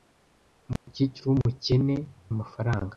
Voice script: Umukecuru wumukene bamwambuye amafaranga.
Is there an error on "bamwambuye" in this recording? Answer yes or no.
yes